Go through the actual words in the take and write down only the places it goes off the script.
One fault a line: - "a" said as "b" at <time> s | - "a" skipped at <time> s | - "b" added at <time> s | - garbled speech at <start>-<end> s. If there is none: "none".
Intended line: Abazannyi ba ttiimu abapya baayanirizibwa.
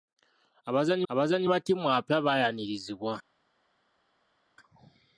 - "abazannyi" added at 1.1 s